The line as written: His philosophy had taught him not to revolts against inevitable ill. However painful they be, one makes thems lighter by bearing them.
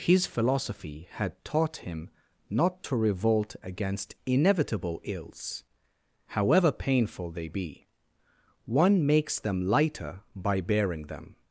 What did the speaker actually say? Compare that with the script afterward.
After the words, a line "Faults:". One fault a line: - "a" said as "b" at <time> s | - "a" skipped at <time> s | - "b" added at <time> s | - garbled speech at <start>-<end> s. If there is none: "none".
His philosophy had taught him not to revolt against inevitable ills. However painful they be, one makes them lighter by bearing them.
Faults:
- "revolts" said as "revolt" at 2.9 s
- "ill" said as "ills" at 5.0 s
- "thems" said as "them" at 9.4 s